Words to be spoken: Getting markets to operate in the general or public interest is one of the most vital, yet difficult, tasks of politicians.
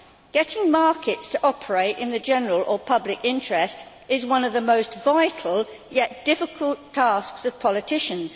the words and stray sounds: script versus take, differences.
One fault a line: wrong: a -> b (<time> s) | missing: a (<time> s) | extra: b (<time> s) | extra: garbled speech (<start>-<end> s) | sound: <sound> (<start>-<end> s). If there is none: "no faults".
no faults